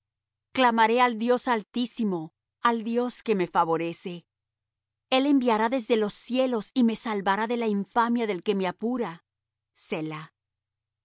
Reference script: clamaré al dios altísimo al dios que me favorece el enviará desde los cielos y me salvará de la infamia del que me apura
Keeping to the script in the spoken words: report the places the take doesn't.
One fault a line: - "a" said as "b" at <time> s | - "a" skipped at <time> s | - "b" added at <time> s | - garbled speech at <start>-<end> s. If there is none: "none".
none